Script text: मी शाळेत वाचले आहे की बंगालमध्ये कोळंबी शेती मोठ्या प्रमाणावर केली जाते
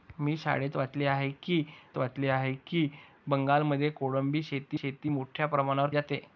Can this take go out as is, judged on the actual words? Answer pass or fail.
fail